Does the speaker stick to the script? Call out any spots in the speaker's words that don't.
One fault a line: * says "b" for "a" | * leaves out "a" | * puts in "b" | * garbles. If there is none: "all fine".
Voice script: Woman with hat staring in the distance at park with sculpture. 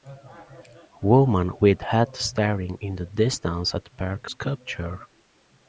* leaves out "with"